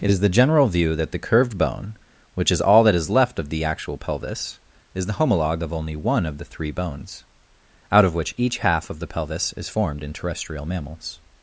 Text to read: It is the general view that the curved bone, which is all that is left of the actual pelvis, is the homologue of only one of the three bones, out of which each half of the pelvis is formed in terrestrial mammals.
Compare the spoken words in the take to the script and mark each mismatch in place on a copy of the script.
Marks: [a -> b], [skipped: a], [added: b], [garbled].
It is the general view that the curved bone, which is all that is left of the actual pelvis, is the homologue of only one of the three bones, out of which each half of the pelvis is formed in terrestrial mammals.